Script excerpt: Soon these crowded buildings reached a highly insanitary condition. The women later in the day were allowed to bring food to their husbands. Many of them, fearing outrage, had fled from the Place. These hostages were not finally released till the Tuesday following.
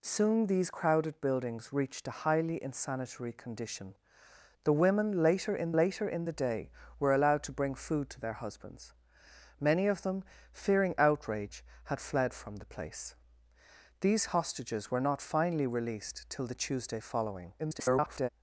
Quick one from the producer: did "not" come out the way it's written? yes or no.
yes